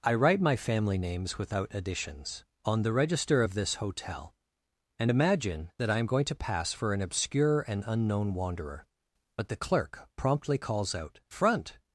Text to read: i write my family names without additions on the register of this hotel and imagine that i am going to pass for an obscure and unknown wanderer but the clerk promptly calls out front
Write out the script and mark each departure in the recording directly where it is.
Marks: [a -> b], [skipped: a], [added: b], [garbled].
i write my family names without additions on the register of this hotel and imagine that i am going to pass for an obscure and unknown wanderer but the clerk promptly calls out front